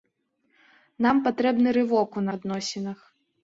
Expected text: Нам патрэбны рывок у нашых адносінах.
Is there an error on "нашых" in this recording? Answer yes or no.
yes